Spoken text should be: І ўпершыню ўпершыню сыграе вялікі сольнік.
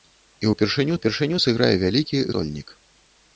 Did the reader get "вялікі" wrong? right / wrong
right